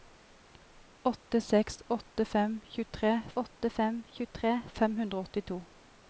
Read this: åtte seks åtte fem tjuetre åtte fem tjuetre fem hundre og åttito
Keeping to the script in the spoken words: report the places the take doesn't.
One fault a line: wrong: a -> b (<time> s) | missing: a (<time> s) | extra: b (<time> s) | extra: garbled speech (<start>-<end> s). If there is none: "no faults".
no faults